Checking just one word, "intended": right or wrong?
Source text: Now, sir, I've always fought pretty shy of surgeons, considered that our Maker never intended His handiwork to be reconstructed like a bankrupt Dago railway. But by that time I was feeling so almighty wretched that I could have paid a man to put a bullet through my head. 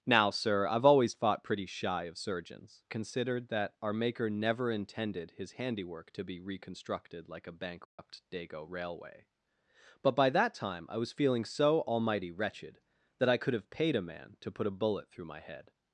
right